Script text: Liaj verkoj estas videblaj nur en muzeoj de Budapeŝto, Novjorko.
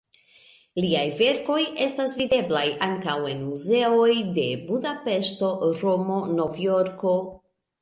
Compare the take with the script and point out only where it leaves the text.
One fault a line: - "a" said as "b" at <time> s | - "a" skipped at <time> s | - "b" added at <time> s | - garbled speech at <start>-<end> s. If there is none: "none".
- "nur" said as "ankaŭ" at 2.9 s
- "Romo" added at 5.8 s